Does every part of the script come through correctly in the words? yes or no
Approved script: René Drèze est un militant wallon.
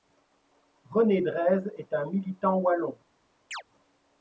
yes